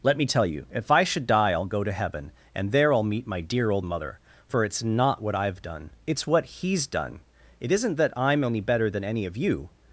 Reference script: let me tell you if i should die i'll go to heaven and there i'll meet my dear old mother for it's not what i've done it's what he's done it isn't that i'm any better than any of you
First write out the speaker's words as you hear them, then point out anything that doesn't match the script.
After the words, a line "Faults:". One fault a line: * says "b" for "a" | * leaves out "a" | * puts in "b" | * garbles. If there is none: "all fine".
let me tell you if i should die i'll go to heaven and there i'll meet my dear old mother for it's not what i've done it's what he's done it isn't that i'm any better than any of you
Faults:
all fine